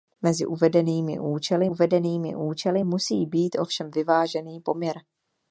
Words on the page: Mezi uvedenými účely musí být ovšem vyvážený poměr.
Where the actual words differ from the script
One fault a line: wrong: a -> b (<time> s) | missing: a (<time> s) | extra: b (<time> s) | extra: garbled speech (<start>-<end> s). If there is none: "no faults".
extra: uvedenými účely (1.6 s)